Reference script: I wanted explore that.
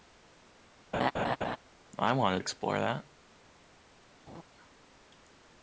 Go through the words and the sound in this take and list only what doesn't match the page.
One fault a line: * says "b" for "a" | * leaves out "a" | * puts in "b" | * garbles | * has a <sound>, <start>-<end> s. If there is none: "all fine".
* has a laugh, 0.9-1.6 s
* has a laugh, 4.3-4.4 s